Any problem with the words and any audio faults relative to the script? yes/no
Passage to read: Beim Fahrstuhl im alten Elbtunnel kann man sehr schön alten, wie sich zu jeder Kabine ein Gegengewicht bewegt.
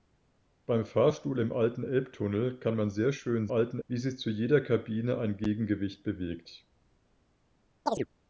yes